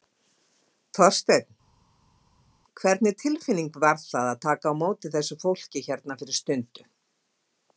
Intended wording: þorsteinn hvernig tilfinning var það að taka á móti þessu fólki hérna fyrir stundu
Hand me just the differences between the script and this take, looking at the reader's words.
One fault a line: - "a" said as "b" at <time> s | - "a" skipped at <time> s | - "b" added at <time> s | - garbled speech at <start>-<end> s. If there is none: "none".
none